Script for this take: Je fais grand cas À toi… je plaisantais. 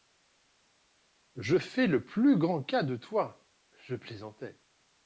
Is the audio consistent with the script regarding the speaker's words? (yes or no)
no